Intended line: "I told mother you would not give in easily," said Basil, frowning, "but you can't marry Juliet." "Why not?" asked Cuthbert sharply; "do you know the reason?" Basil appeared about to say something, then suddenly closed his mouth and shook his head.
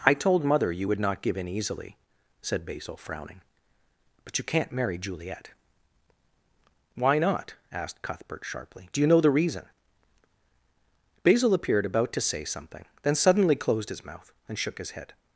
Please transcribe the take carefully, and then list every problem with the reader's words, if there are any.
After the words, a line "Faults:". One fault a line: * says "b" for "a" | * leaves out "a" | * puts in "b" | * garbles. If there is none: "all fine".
"I told mother you would not give in easily," said Basil, frowning, "but you can't marry Juliet." "Why not?" asked Cuthbert sharply; "do you know the reason?" Basil appeared about to say something, then suddenly closed his mouth and shook his head.
Faults:
all fine